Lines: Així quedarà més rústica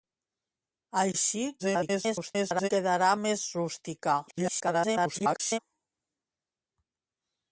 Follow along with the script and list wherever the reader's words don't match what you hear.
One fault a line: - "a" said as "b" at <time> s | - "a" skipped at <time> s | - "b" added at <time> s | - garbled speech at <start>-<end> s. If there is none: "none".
- garbled speech at 1.6-2.7 s
- garbled speech at 4.3-5.6 s